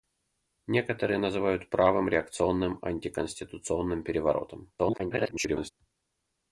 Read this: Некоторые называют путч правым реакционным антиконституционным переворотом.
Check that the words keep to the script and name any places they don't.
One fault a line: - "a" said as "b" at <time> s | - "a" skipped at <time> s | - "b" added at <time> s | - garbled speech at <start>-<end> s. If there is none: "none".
- "путч" skipped at 1.7 s
- garbled speech at 4.8-5.7 s